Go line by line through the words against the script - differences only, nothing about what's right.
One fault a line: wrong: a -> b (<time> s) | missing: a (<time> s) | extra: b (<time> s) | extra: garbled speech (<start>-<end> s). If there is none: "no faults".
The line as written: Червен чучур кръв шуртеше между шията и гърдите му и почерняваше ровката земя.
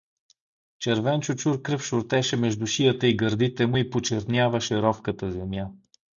no faults